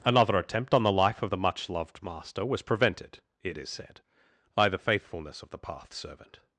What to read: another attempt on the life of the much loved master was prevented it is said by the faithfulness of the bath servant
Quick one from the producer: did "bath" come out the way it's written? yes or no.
no